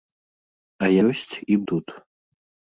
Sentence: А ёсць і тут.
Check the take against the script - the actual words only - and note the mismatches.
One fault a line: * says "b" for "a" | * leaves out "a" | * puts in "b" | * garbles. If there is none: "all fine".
all fine